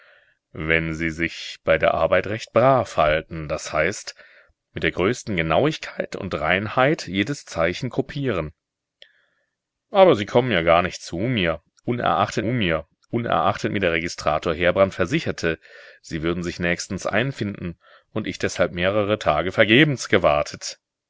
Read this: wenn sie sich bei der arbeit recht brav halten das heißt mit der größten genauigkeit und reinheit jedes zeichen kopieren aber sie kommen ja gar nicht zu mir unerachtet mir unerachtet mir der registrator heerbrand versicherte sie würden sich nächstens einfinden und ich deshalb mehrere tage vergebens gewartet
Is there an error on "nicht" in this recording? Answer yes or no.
no